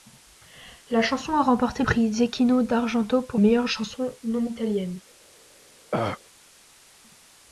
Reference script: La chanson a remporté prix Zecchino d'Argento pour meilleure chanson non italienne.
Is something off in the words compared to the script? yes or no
no